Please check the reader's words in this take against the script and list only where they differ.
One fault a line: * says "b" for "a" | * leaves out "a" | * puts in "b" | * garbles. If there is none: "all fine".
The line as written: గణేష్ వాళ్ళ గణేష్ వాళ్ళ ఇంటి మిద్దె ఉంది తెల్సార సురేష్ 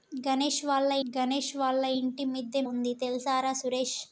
all fine